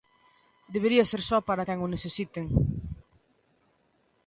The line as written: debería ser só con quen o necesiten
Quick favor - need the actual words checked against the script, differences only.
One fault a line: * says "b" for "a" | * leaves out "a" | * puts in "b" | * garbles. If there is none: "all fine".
* says "para" for "con"